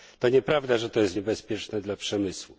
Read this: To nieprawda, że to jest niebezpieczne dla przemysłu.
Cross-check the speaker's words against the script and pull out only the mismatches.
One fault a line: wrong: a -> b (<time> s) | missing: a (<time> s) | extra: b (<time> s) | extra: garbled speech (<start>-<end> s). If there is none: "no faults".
no faults